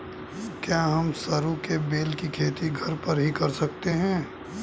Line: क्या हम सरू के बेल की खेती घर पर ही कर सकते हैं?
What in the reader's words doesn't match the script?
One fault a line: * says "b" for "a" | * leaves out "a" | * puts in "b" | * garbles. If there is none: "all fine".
all fine